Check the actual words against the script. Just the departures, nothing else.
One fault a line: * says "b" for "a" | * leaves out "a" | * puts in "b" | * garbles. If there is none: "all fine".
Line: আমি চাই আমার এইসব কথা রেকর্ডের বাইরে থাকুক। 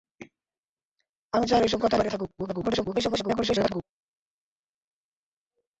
* leaves out "আমার"
* leaves out "রেকর্ডের"
* garbles